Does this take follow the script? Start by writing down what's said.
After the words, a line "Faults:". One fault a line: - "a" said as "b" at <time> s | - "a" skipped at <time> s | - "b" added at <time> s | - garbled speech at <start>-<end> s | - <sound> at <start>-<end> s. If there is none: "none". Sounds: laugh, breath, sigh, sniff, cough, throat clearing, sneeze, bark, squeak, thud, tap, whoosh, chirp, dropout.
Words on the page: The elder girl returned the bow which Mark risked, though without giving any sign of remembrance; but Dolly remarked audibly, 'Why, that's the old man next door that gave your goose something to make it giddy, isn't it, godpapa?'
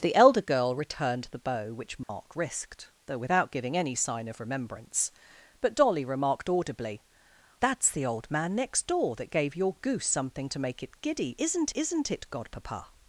The elder girl returned the bow which Mark risked, though without giving any sign of remembrance; but Dolly remarked audibly, 'That's the old man next door that gave your goose something to make it giddy, isn't isn't it, godpapa?'
Faults:
- dropout at 2.0-2.1 s
- "Why" skipped at 7.0 s
- "isn't" added at 11.7 s